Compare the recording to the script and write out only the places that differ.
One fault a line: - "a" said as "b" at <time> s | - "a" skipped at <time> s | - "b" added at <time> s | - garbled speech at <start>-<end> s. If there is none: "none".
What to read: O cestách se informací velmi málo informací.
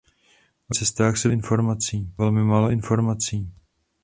none